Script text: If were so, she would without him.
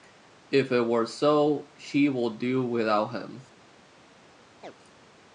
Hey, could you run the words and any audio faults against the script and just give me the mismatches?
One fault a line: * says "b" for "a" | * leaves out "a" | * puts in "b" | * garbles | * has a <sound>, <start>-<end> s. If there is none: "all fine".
* puts in "it"
* puts in "do"
* has a chirp, 4.6-4.7 s